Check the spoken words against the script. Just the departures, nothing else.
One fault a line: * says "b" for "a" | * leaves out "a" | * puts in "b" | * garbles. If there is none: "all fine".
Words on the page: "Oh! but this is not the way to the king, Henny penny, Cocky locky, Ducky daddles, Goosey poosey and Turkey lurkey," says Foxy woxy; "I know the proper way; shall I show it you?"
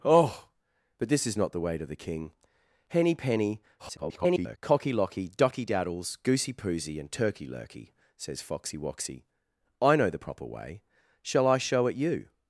* garbles